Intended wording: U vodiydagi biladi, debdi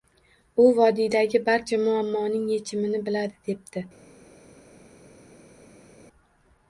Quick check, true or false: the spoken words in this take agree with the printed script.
false